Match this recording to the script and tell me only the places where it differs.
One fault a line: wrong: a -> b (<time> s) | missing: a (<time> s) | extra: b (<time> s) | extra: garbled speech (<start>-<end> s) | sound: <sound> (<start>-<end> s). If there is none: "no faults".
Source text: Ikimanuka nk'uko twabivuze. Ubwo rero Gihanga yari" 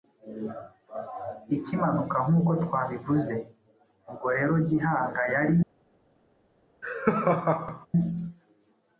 sound: laugh (6.8-7.9 s)